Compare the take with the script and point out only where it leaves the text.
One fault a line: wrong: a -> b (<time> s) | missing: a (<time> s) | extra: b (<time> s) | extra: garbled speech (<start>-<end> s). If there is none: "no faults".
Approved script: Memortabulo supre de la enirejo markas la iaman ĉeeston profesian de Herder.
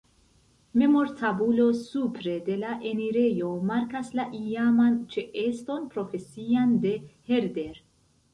no faults